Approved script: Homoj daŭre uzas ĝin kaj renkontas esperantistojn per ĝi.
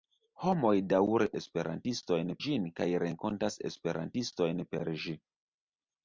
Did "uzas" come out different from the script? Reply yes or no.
yes